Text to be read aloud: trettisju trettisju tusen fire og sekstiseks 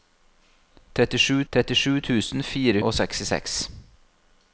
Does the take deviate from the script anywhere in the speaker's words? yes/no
no